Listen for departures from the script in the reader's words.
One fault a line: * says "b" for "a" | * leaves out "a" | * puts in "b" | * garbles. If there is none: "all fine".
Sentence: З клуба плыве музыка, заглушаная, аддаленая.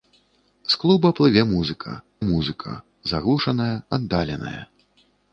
* puts in "музыка"